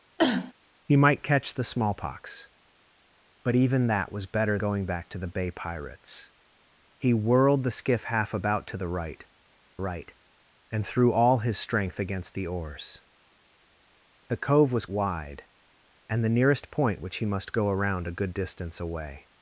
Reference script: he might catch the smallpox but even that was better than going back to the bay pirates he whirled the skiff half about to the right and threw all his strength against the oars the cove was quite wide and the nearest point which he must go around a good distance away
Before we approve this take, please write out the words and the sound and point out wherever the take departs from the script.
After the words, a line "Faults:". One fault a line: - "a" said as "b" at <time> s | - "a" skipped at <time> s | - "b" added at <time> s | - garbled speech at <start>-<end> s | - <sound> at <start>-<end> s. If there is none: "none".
he might catch the smallpox but even that was better going back to the bay pirates he whirled the skiff half about to the right right and threw all his strength against the oars the cove was wide and the nearest point which he must go around a good distance away
Faults:
- cough at 0.2-0.5 s
- "than" skipped at 4.6 s
- "right" added at 9.8 s
- "quite" skipped at 14.8 s